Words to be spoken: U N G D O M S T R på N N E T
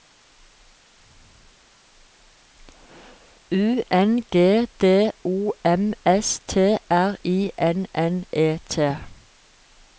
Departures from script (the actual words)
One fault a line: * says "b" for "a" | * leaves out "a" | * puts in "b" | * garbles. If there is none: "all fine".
* says "I" for "på"